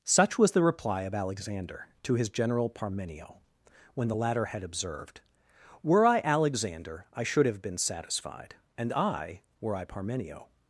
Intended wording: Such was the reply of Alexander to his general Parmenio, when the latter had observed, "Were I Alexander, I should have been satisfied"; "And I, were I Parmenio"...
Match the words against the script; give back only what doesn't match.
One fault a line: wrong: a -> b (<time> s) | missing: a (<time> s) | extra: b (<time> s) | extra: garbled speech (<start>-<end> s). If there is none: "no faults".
no faults